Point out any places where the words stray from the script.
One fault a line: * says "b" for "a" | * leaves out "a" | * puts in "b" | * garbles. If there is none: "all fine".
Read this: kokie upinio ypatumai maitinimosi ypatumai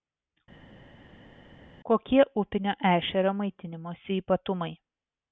* says "ešerio" for "ypatumai"